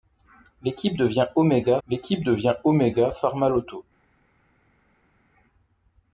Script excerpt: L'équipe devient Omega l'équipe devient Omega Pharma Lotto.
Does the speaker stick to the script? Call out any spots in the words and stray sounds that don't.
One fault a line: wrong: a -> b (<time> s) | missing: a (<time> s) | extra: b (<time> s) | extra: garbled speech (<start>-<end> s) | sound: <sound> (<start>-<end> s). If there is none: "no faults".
no faults